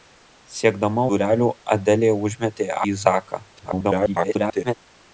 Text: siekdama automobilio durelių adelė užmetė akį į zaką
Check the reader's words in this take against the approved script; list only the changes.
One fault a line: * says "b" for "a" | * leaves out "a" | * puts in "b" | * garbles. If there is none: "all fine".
* leaves out "automobilio"
* leaves out "akį"
* garbles